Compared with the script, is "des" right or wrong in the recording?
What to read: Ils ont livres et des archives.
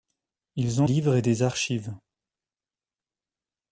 right